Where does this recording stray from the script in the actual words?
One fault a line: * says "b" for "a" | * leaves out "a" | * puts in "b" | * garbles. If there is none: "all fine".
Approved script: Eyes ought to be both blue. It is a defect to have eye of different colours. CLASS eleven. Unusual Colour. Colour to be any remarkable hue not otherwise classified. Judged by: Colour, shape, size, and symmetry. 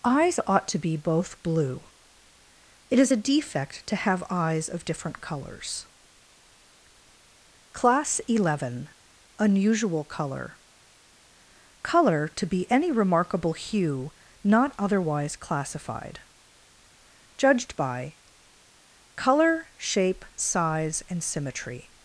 * says "eyes" for "eye"